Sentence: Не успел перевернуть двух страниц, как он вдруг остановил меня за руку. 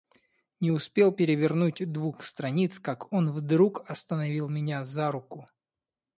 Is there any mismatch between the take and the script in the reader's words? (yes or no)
no